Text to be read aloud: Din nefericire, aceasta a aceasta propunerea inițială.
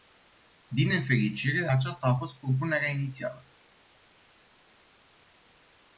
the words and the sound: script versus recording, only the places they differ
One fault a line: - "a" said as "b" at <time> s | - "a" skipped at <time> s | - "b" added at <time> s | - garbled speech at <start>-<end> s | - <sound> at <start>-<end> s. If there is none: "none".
- "aceasta" said as "fost" at 2.1 s